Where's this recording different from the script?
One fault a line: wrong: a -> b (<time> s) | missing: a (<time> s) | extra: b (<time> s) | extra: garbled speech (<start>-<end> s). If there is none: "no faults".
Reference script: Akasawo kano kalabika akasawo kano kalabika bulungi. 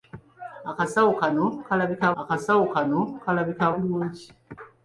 no faults